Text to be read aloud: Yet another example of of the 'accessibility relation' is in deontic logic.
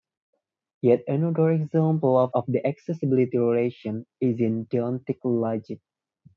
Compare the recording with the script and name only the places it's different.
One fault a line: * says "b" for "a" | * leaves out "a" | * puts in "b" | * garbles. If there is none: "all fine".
all fine